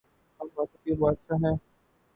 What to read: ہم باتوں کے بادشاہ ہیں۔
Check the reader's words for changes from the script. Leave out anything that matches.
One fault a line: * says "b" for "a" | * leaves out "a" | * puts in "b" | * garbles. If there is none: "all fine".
all fine